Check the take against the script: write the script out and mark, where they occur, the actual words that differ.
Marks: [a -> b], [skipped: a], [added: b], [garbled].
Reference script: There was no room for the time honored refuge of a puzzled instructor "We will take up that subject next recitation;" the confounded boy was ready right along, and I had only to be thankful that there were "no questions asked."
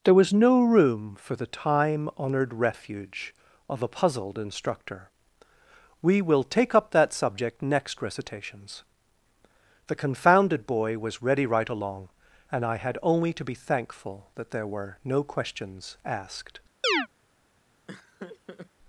There was no room for the time honored refuge of a puzzled instructor "We will take up that subject next [recitation;" -> recitations] the confounded boy was ready right along, and I had only to be thankful that there were "no questions asked."